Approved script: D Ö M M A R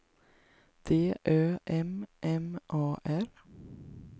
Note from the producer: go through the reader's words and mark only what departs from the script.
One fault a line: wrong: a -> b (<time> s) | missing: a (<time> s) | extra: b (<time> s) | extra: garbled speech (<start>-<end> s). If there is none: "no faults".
no faults